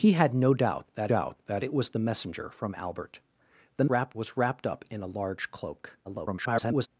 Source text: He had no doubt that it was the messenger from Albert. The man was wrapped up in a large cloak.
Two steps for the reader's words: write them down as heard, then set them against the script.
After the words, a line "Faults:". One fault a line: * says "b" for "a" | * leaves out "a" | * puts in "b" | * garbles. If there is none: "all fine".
He had no doubt that doubt that it was the messenger from Albert. The wrapped was wrapped up in a large cloak. [garbled]
Faults:
* puts in "doubt that"
* says "wrapped" for "man"
* garbles